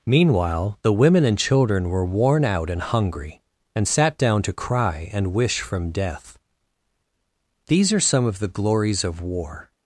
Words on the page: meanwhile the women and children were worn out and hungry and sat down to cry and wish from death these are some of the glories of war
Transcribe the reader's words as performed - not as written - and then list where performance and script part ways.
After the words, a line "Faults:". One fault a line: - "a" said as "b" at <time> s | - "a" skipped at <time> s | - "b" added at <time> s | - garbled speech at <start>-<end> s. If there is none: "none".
meanwhile the women and children were worn out and hungry and sat down to cry and wish from death these are some of the glories of war
Faults:
none